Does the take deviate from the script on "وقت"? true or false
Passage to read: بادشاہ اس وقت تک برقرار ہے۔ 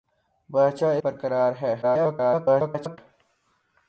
true